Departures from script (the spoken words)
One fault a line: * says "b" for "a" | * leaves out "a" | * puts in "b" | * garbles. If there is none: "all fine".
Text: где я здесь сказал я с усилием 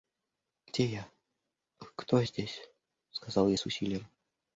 * puts in "кто"